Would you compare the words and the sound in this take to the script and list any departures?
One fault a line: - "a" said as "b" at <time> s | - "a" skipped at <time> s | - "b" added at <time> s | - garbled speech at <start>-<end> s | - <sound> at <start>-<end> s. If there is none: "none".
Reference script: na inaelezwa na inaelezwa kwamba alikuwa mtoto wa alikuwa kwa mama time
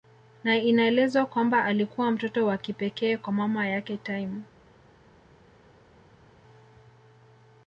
- "na inaelezwa" skipped at 1.2 s
- "alikuwa" said as "kipekee" at 2.6 s
- "yake" added at 3.7 s